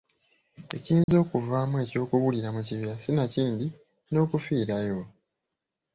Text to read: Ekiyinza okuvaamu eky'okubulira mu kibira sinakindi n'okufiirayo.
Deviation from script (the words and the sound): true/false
true